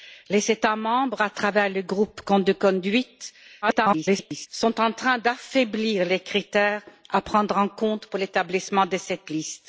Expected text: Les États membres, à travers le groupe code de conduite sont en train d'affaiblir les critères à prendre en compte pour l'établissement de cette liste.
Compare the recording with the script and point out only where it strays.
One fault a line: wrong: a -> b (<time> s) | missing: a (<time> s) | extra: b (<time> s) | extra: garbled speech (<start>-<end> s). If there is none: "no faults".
extra: garbled speech (3.6-4.5 s)